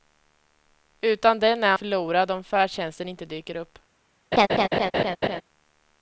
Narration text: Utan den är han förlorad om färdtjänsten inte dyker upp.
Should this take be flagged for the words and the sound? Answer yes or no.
yes